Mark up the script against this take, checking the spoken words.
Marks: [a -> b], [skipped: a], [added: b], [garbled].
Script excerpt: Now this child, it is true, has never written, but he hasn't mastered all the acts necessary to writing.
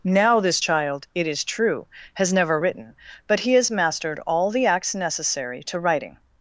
Now this child, it is true, has never written, but he [hasn't -> has] mastered all the acts necessary to writing.